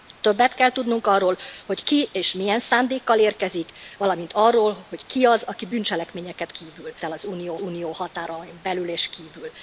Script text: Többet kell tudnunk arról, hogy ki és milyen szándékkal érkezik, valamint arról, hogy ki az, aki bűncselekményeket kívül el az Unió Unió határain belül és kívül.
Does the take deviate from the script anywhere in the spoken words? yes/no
no